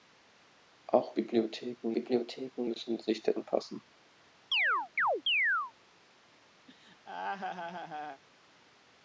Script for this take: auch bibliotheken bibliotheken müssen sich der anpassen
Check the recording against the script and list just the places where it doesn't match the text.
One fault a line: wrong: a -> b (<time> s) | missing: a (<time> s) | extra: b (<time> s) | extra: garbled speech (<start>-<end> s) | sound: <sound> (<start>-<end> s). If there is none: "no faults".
sound: chirp (4.5-5.7 s)
sound: laugh (6.7-8.2 s)